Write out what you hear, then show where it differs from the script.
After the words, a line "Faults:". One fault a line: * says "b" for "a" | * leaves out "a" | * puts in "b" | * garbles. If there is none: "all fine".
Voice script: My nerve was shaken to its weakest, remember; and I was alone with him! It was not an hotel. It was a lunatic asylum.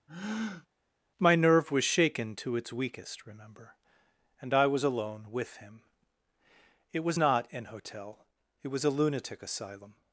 My nerve was shaken to its weakest, remember; and I was alone with him! It was not an hotel. It was a lunatic asylum.
Faults:
all fine